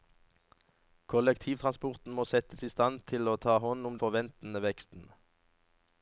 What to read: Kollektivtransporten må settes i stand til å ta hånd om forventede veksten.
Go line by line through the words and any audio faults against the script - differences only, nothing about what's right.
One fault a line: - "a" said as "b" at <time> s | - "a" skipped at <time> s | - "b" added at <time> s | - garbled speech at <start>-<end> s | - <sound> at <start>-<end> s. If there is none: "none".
none